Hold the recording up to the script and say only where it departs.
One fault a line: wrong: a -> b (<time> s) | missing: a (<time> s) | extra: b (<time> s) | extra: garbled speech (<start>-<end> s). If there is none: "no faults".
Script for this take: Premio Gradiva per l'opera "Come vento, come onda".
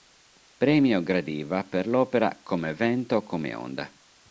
no faults